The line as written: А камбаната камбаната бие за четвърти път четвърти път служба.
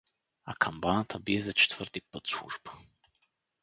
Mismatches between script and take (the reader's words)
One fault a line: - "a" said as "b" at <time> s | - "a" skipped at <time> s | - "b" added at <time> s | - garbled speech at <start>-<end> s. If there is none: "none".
- "камбаната" skipped at 1.2 s
- "четвърти път" skipped at 2.3 s